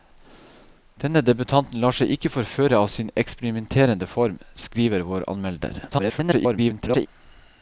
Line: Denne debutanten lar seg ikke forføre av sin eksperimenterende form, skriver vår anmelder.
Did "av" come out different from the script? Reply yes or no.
no